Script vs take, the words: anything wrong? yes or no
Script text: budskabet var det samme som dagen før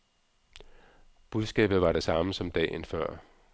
no